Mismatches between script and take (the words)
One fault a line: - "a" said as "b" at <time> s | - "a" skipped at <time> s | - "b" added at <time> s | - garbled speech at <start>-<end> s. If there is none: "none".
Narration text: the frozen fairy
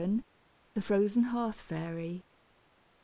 - "hearth" added at 1.2 s